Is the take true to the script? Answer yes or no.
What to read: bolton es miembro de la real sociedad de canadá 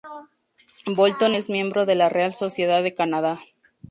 yes